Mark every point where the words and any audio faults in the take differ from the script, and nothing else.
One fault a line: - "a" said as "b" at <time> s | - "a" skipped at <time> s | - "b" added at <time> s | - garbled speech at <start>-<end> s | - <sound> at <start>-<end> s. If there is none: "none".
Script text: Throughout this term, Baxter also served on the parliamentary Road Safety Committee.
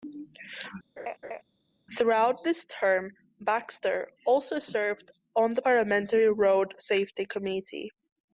- laugh at 1.0-1.4 s